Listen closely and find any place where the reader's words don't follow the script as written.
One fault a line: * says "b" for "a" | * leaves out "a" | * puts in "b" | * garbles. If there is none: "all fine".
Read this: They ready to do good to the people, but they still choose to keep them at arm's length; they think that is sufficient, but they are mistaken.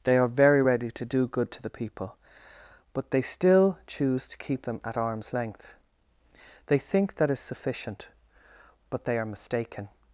* puts in "are very"